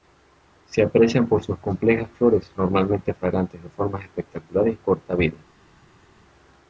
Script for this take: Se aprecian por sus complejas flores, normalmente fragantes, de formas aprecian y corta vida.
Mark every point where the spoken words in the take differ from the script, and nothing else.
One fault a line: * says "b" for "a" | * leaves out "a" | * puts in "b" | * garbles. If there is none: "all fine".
* says "espectaculares" for "aprecian"